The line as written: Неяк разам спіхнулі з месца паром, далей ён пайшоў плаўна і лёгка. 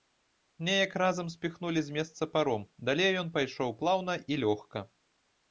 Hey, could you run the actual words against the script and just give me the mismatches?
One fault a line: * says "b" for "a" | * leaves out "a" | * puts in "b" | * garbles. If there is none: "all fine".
all fine